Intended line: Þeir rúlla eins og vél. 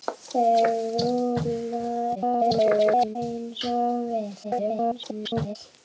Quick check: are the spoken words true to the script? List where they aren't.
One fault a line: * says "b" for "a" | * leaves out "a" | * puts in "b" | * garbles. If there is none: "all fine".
* garbles
* garbles